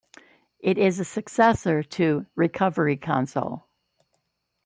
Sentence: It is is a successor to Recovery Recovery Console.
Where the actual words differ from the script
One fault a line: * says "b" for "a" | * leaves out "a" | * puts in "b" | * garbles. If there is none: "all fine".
* leaves out "is"
* leaves out "Recovery"